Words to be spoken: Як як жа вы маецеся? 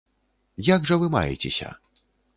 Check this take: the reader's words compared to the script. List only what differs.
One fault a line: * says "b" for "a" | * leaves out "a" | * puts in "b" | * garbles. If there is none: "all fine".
* leaves out "як"